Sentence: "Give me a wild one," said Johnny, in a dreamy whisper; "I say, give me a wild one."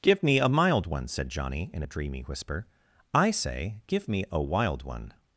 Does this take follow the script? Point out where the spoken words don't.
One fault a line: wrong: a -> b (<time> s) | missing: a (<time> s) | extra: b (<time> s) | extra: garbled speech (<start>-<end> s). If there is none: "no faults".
wrong: wild -> mild (0.5 s)